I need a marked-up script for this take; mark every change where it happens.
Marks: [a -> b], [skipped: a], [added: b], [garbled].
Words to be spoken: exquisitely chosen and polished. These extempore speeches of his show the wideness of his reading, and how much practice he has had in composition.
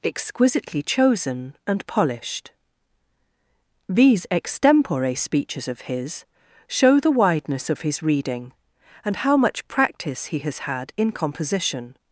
exquisitely chosen and polished. These extempore speeches of his show the wideness of his reading, and how much practice he has had in composition.